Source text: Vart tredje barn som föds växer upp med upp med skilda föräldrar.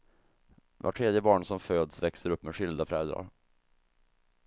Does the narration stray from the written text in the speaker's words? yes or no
yes